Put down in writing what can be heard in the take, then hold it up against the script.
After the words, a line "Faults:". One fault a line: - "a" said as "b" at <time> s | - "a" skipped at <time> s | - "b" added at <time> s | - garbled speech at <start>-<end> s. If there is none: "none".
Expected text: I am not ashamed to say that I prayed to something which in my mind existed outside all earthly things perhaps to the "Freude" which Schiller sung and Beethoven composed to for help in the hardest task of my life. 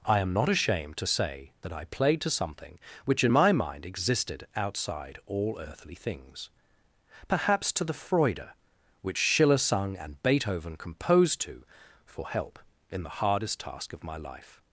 I am not ashamed to say that I played to something which in my mind existed outside all earthly things perhaps to the "Freude" which Schiller sung and Beethoven composed to for help in the hardest task of my life.
Faults:
- "prayed" said as "played" at 1.9 s